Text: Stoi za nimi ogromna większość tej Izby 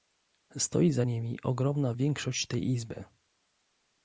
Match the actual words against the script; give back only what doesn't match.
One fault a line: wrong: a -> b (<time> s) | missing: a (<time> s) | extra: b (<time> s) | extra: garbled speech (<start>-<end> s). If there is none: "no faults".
no faults